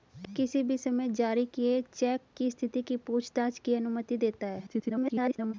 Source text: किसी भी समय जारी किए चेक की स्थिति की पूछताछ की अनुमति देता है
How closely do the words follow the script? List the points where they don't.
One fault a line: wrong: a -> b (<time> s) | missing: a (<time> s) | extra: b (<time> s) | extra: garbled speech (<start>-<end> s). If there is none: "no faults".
extra: garbled speech (4.7-5.5 s)